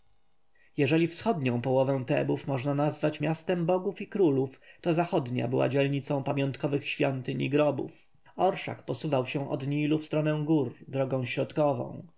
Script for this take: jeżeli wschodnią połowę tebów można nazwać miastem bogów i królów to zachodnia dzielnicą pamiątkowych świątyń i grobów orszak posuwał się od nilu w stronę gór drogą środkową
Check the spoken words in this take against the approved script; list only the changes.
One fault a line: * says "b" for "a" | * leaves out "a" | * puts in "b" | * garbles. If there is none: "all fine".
* puts in "była"